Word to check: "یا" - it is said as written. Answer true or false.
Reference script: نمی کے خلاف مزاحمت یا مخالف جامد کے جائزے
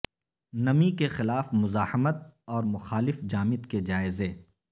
false